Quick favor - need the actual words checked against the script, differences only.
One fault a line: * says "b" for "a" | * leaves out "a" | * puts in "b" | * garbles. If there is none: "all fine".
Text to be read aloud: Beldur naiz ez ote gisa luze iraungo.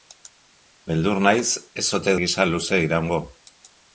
all fine